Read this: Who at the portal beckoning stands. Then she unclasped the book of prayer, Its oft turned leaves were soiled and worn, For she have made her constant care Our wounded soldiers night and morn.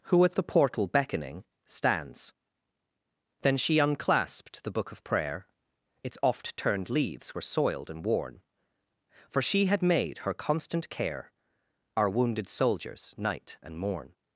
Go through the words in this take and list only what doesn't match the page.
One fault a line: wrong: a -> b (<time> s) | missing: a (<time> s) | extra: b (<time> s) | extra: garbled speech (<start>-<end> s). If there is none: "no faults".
wrong: have -> had (9.7 s)